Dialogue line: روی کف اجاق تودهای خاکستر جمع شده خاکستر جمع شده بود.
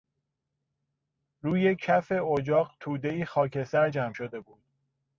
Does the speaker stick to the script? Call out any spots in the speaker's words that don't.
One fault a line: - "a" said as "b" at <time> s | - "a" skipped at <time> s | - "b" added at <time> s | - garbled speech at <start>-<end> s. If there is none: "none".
- "خاکستر جمع شده" skipped at 4.4 s